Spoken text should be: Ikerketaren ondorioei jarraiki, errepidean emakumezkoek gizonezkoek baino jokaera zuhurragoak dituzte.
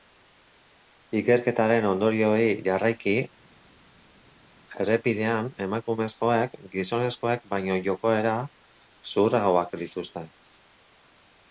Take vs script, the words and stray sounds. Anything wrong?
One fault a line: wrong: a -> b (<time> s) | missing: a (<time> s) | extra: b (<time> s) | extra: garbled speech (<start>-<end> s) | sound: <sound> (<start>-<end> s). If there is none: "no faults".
no faults